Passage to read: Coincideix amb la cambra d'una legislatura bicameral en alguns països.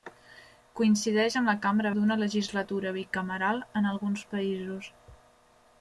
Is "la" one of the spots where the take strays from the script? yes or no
no